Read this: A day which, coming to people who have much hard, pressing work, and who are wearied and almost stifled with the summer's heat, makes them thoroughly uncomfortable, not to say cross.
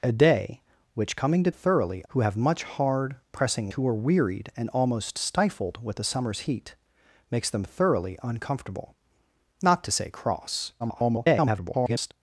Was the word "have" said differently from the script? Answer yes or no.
no